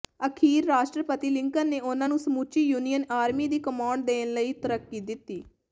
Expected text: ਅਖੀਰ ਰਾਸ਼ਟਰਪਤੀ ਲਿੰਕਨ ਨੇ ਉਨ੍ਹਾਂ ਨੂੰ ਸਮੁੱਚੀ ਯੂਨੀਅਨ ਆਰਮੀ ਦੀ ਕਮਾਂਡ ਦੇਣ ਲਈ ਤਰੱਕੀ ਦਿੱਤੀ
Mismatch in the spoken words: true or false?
false